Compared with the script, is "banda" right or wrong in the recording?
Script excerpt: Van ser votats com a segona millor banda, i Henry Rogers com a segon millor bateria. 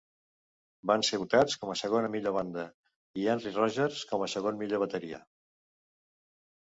right